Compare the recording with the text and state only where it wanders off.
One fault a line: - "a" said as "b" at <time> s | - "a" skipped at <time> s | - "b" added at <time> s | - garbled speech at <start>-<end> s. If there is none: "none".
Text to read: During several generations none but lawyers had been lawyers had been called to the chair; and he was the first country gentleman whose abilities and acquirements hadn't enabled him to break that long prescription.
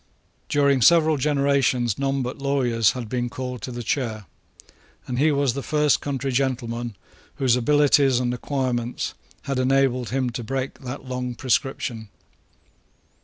- "lawyers had been" skipped at 3.3 s
- "hadn't" said as "had" at 9.4 s